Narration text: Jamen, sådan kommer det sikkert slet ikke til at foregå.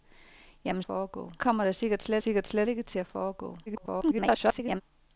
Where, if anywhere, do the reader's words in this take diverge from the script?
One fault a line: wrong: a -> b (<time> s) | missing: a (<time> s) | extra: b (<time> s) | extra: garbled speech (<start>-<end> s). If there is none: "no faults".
wrong: sådan -> foregå (0.8 s)
extra: sikkert slet (2.2 s)
extra: garbled speech (3.7-4.8 s)